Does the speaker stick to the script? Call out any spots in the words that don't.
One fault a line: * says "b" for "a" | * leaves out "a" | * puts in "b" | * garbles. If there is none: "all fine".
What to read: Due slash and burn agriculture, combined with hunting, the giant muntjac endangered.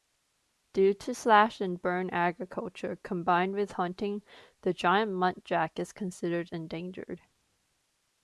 * puts in "to"
* puts in "is considered"